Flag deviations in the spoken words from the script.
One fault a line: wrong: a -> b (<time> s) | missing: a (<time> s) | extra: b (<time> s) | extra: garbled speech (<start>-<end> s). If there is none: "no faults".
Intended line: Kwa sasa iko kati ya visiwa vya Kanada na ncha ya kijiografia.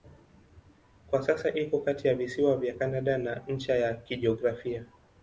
no faults